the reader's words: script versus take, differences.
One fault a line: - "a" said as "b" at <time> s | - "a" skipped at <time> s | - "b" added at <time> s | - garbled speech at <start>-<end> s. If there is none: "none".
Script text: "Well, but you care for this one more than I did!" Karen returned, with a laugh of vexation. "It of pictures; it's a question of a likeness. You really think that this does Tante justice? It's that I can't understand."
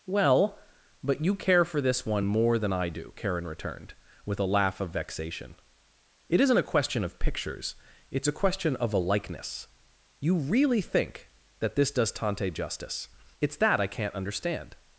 - "did" said as "do" at 2.9 s
- "isn't a question" added at 6.4 s